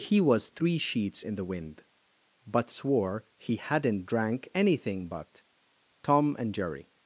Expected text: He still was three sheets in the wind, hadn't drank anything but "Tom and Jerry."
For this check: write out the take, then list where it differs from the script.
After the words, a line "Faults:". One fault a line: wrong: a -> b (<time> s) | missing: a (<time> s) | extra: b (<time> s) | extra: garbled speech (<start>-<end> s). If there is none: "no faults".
He was three sheets in the wind, but swore he hadn't drank anything but "Tom and Jerry."
Faults:
missing: still (0.2 s)
extra: but swore he (2.5 s)